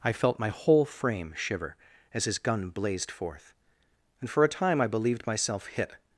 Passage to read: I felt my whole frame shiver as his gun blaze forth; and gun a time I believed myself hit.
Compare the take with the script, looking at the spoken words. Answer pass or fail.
fail